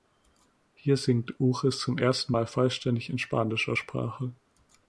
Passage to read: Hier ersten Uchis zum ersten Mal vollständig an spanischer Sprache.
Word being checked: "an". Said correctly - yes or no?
no